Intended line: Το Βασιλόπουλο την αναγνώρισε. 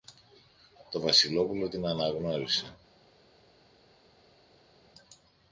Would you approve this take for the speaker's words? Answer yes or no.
yes